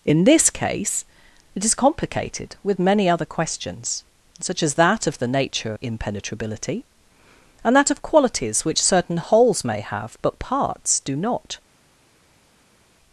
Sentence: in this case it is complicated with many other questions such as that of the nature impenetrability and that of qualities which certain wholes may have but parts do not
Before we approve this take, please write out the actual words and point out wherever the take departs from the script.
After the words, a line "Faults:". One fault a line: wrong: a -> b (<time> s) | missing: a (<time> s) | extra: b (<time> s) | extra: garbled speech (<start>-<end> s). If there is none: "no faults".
in this case it is complicated with many other questions such as that of the nature impenetrability and that of qualities which certain wholes may have but parts do not
Faults:
no faults